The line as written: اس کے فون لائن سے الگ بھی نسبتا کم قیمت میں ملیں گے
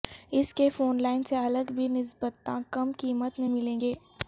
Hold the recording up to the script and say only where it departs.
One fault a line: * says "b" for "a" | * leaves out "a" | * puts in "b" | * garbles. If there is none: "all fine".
all fine